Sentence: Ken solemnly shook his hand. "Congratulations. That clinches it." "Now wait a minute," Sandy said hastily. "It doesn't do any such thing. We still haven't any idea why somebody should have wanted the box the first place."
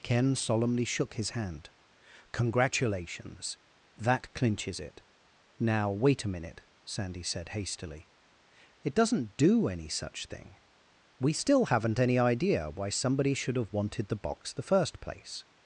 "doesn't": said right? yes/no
yes